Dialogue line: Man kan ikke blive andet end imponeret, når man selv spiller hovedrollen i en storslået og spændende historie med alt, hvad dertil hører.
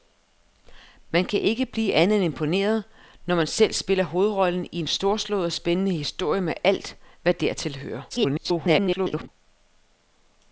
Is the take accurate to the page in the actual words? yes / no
no